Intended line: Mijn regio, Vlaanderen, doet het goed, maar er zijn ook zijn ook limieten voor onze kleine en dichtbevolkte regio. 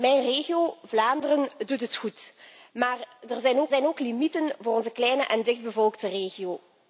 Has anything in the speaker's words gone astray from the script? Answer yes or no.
no